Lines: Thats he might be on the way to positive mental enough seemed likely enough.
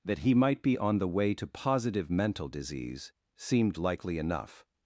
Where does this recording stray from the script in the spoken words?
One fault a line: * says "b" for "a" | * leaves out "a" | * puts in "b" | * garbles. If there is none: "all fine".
* says "That" for "Thats"
* says "disease" for "enough"